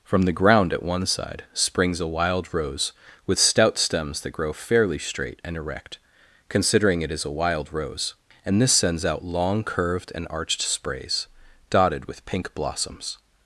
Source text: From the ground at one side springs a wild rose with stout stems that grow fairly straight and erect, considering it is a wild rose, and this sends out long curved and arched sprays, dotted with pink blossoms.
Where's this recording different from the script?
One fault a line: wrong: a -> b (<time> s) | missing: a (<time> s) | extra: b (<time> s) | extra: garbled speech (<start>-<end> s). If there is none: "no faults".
no faults